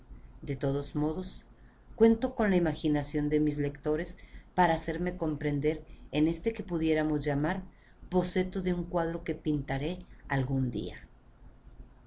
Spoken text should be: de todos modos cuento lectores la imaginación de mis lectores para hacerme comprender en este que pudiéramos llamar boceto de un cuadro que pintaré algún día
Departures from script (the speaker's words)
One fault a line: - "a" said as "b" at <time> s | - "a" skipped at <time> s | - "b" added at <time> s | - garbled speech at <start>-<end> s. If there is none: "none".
- "lectores" said as "con" at 2.4 s